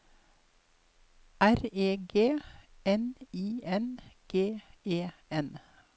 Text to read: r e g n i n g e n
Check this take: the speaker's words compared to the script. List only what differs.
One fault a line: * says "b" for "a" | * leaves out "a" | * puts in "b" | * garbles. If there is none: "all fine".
all fine